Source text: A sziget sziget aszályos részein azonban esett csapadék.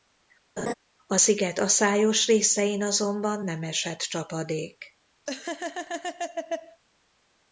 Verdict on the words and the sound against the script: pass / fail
fail